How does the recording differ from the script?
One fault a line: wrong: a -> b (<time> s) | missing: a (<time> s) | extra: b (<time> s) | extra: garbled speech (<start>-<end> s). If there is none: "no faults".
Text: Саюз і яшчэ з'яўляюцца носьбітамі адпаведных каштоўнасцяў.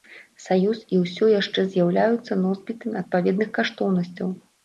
extra: ўсё (1.0 s)